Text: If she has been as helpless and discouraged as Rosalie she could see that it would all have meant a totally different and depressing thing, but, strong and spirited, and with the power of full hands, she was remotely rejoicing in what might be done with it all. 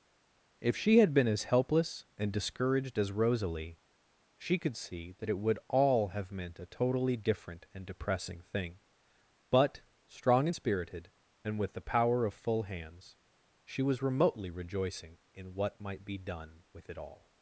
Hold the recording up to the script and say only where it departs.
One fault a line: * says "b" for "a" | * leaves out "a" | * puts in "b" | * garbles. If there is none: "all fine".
* says "had" for "has"